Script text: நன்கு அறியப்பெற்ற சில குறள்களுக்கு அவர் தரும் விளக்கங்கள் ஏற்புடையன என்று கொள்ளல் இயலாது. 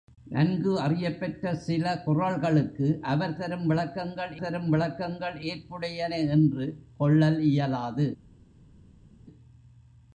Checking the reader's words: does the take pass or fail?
fail